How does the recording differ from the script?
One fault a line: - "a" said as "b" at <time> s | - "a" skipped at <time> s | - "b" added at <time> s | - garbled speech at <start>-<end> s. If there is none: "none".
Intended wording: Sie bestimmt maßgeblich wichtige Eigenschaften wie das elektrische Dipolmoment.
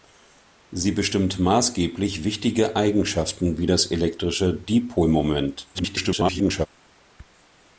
- garbled speech at 5.7-6.7 s